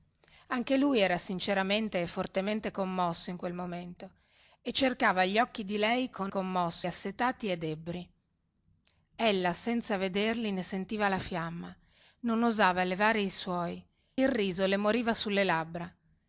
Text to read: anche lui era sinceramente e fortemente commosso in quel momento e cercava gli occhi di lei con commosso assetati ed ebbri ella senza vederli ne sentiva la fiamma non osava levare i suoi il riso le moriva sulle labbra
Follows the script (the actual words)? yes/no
yes